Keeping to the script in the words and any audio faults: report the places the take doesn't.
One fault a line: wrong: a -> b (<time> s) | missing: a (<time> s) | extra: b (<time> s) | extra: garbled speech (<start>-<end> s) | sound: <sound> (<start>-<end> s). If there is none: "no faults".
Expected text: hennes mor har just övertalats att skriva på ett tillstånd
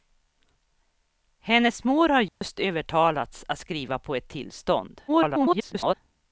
sound: dropout (2.3-2.4 s)
extra: garbled speech (5.1-5.9 s)